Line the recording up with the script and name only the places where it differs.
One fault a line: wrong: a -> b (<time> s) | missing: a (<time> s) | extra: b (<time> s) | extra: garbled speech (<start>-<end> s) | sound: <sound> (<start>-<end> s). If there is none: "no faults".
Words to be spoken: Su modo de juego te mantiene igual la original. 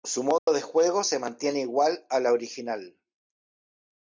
sound: dropout (0.4-0.5 s)
wrong: te -> se (1.0 s)
extra: a (2.1 s)